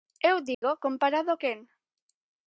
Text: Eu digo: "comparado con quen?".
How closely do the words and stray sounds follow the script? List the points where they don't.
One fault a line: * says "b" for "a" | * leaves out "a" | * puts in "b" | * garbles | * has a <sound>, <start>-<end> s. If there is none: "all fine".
* has a dropout, 0.5-0.6 s
* leaves out "con"